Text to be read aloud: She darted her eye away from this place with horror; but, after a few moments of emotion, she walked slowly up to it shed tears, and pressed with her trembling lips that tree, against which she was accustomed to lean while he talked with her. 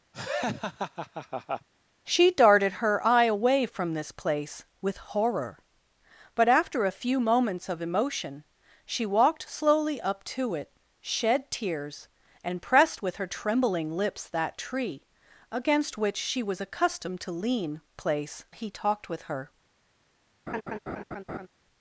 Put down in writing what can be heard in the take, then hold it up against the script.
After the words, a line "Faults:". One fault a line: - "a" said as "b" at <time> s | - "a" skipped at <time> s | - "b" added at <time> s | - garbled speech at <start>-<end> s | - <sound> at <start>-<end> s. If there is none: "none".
She darted her eye away from this place with horror; but, after a few moments of emotion, she walked slowly up to it shed tears, and pressed with her trembling lips that tree, against which she was accustomed to lean place he talked with her.
Faults:
- laugh at 0.1-1.7 s
- "while" said as "place" at 17.9 s
- laugh at 20.5-21.5 s